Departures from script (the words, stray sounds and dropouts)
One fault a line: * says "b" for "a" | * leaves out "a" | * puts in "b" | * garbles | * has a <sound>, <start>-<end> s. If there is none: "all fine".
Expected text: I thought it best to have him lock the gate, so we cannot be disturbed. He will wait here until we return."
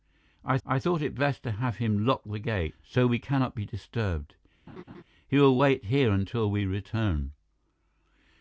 * puts in "I"
* has a laugh, 4.7-5.0 s